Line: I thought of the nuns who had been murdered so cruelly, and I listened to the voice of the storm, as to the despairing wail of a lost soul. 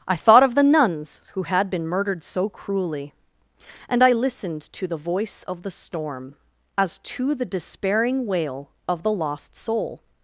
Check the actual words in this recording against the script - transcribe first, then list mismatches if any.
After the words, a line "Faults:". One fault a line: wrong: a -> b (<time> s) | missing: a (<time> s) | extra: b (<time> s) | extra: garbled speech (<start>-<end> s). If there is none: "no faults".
I thought of the nuns who had been murdered so cruelly, and I listened to the voice of the storm, as to the despairing wail of the lost soul.
Faults:
wrong: a -> the (9.0 s)